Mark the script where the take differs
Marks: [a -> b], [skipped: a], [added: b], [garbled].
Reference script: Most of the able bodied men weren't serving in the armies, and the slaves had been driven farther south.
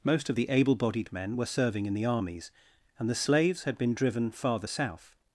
Most of the able bodied men [weren't -> were] serving in the armies, and the slaves had been driven farther south.